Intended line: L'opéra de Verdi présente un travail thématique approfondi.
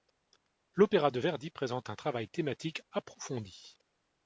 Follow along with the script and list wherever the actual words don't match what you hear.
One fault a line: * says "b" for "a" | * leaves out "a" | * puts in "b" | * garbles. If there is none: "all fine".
all fine